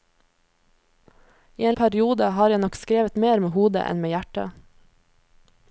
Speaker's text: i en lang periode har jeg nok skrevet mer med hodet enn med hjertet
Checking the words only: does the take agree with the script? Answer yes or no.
no